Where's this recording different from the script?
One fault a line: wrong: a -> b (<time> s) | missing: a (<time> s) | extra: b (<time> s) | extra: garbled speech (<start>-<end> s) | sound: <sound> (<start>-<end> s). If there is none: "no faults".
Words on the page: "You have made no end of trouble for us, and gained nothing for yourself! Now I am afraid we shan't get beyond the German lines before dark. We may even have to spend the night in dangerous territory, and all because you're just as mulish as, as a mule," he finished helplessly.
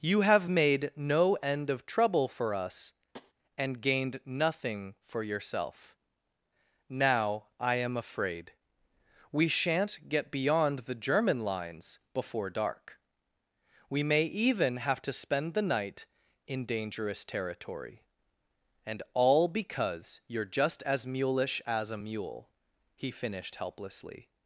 sound: tap (3.1-3.3 s)
missing: as (21.9 s)